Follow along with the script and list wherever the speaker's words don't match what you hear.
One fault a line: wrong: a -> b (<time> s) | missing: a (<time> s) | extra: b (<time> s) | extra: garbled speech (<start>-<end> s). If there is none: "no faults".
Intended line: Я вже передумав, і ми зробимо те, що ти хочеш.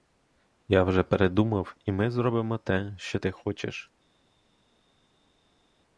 no faults